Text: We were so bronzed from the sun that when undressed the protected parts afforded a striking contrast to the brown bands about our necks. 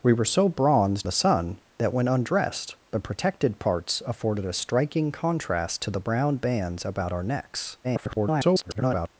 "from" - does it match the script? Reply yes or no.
no